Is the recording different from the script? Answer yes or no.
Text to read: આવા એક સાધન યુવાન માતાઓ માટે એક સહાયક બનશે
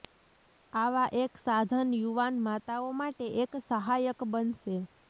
no